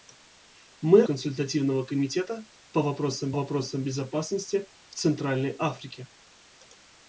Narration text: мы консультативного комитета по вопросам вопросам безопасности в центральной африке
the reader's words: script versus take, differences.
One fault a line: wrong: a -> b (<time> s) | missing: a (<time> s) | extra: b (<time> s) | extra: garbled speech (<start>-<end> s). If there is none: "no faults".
no faults